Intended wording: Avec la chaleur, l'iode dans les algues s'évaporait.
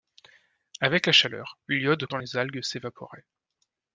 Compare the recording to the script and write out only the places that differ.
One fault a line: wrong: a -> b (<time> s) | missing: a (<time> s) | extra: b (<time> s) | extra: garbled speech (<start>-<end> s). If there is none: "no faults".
no faults